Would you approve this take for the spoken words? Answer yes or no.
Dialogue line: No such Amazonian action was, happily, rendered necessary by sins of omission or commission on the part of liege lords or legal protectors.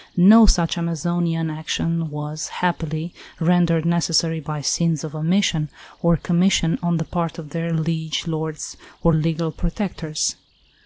no